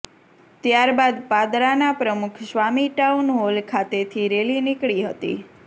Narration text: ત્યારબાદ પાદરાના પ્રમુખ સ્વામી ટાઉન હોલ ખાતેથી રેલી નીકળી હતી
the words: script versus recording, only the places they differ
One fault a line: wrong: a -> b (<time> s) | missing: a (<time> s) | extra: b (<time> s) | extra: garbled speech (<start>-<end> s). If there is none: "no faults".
no faults